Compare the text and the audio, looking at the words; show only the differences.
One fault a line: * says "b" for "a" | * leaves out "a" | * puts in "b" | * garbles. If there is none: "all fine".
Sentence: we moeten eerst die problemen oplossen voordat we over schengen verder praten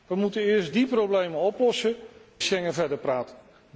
* leaves out "voordat we over"